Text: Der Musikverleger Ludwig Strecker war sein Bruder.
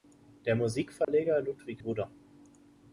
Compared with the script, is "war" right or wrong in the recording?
wrong